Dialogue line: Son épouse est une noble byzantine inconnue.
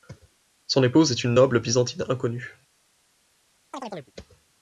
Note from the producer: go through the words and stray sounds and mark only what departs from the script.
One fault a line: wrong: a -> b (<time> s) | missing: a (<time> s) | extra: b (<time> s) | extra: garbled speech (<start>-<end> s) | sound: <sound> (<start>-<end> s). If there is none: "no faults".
sound: chirp (3.7-4.1 s)